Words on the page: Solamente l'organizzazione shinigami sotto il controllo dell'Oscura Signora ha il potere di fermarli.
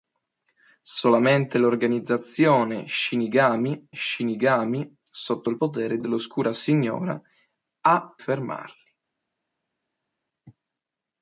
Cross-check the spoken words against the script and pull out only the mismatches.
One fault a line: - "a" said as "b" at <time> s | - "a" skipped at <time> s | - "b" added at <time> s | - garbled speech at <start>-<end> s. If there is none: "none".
- "shinigami" added at 3.9 s
- "controllo" said as "potere" at 5.6 s
- "il potere di" skipped at 8.2 s